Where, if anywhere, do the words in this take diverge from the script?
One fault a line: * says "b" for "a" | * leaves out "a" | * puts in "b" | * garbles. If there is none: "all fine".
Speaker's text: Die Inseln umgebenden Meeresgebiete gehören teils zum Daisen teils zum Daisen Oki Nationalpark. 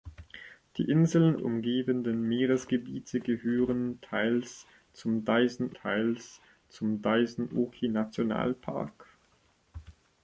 all fine